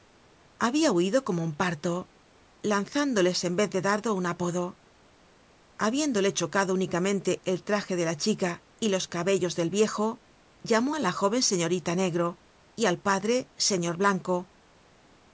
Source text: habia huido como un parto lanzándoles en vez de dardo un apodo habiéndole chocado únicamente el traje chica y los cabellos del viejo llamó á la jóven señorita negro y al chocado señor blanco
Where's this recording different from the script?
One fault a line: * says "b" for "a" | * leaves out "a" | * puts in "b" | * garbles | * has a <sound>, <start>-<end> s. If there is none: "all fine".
* puts in "de la"
* says "padre" for "chocado"